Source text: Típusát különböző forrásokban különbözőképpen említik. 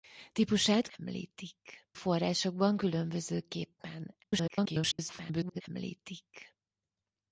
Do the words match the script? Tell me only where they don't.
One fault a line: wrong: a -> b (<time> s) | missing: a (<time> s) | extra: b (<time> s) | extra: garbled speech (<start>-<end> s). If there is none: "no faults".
wrong: különböző -> említik (1.0 s)
extra: garbled speech (4.2-5.6 s)